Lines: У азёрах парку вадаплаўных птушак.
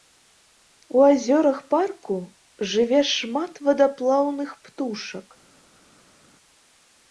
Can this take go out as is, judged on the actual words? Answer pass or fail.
fail